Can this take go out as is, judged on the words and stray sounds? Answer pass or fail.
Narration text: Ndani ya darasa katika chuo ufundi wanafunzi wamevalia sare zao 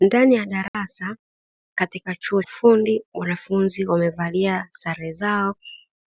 fail